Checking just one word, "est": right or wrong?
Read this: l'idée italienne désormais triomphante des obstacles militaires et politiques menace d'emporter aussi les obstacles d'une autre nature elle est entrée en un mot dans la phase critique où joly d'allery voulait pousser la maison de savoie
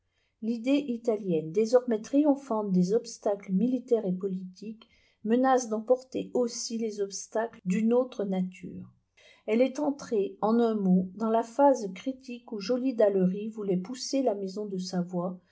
right